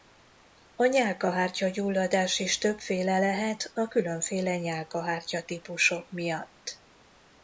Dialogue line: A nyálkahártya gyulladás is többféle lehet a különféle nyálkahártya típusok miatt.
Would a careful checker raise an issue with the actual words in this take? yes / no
no